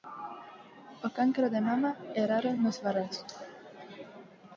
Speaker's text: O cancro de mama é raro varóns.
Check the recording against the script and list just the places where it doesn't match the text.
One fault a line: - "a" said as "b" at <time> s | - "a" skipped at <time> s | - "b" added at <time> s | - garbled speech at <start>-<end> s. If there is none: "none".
- "nos" added at 2.6 s